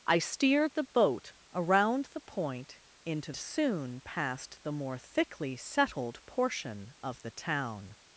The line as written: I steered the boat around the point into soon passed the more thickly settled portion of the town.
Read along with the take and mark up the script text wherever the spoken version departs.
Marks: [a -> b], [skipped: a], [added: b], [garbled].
I steered the boat around the point into soon passed the more thickly settled portion of the town.